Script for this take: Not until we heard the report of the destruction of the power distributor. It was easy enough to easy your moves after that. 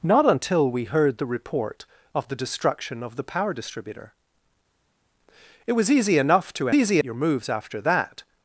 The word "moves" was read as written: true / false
true